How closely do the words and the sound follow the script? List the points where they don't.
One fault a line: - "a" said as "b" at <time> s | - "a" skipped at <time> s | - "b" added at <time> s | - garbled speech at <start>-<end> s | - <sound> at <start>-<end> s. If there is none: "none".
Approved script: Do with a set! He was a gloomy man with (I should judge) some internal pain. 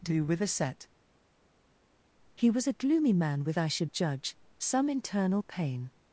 none